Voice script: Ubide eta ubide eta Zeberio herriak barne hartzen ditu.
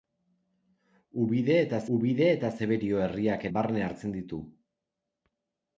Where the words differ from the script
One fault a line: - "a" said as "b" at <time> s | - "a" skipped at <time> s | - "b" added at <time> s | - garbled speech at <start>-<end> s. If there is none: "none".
none